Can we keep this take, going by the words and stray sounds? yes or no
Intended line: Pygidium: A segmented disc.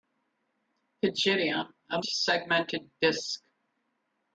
yes